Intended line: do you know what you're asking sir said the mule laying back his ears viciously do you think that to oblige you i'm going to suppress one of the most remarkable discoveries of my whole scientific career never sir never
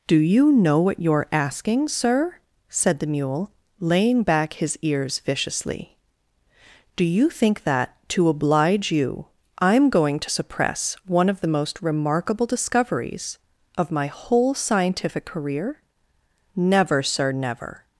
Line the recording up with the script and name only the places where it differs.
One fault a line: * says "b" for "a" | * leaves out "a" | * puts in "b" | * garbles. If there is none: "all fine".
all fine